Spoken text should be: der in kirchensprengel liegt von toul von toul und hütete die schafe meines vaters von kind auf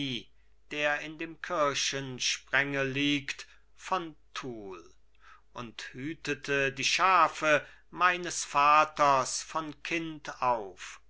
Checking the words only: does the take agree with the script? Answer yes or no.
no